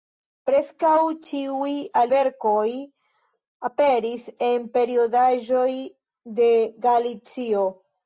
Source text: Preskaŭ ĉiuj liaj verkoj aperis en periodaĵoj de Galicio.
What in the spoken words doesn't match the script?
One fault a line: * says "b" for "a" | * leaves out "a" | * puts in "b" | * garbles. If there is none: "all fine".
* leaves out "liaj"